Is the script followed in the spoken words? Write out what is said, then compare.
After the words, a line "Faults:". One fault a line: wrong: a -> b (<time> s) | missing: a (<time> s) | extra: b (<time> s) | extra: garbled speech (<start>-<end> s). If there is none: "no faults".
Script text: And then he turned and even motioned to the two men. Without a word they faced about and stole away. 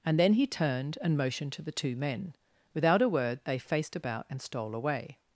And then he turned and motioned to the two men. Without a word they faced about and stole away.
Faults:
missing: even (1.1 s)